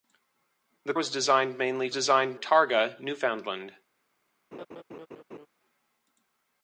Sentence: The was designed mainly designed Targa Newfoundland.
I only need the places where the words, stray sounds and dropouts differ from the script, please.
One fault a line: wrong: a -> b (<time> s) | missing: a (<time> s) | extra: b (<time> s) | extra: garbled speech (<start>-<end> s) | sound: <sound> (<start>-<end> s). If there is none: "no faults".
sound: laugh (4.5-5.5 s)